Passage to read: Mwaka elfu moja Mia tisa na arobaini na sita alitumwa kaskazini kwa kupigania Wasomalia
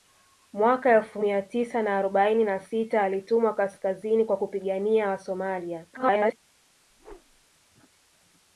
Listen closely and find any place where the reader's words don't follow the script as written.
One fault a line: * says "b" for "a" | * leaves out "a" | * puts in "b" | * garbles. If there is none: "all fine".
* leaves out "moja"
* garbles